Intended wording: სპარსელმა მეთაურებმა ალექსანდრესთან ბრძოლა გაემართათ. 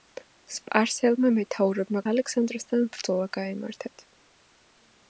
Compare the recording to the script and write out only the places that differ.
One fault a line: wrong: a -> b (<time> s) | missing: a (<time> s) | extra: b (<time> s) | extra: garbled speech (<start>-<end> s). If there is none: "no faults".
no faults